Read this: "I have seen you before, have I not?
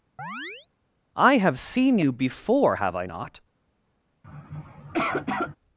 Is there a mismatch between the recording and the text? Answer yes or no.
no